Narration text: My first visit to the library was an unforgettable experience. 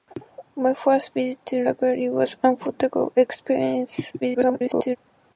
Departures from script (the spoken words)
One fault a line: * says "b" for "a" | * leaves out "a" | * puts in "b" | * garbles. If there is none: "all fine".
* leaves out "the"
* garbles